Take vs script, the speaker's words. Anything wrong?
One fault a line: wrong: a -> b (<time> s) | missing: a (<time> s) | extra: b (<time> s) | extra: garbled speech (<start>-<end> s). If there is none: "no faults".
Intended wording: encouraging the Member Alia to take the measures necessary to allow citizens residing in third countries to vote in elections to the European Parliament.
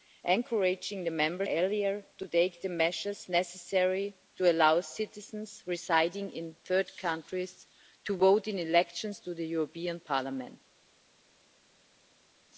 no faults